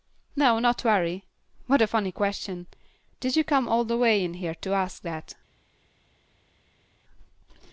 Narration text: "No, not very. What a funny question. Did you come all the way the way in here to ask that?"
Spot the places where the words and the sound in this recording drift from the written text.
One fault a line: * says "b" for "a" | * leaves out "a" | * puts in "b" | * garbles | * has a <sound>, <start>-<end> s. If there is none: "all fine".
* leaves out "the way"